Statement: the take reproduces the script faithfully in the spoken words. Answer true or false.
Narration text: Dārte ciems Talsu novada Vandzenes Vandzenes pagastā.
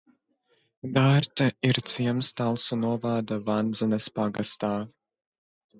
false